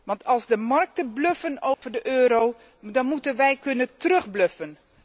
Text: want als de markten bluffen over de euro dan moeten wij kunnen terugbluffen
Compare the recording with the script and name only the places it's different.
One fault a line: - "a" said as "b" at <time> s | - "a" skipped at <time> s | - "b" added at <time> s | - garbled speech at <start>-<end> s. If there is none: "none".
none